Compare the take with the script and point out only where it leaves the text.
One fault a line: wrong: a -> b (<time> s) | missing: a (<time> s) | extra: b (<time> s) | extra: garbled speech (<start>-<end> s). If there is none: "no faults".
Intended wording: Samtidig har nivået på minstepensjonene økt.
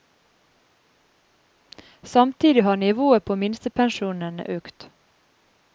no faults